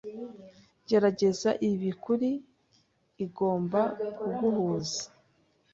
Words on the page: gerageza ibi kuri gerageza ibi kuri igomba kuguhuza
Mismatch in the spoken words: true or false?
true